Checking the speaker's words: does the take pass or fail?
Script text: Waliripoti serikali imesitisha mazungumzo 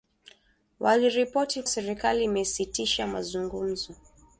pass